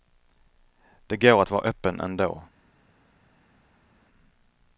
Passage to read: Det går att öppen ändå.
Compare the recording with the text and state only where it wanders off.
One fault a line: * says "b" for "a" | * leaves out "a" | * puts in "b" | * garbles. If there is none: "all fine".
* puts in "vara"